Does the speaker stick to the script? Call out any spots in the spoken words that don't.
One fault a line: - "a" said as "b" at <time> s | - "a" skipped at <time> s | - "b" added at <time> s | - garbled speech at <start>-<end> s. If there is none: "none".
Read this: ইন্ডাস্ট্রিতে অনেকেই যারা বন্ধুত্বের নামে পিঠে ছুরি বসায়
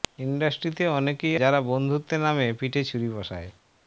none